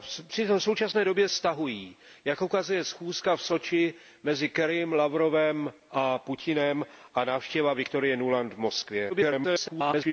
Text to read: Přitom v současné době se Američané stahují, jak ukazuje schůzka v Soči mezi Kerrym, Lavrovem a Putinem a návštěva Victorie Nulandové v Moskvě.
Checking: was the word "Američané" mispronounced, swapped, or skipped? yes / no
yes